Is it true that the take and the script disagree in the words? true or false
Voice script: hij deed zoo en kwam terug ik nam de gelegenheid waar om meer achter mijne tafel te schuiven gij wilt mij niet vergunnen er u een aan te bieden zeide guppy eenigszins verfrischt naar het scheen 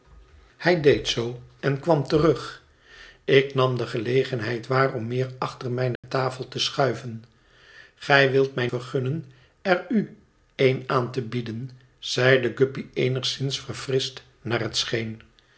true